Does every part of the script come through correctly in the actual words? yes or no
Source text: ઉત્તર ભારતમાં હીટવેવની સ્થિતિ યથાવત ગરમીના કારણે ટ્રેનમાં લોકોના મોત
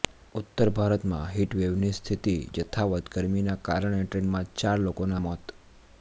no